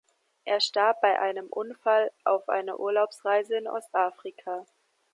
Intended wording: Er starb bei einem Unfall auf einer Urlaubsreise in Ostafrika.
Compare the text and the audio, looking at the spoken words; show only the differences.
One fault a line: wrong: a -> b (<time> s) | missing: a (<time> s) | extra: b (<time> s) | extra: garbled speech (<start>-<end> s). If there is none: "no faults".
no faults